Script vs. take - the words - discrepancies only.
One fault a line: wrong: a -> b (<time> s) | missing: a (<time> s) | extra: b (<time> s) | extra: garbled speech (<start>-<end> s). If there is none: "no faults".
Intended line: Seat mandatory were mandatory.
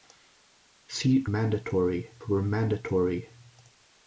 no faults